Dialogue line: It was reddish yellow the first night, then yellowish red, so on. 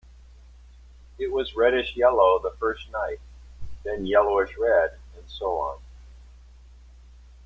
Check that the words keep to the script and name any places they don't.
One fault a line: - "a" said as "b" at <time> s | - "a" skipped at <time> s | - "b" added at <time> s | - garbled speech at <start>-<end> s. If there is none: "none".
- "and" added at 5.1 s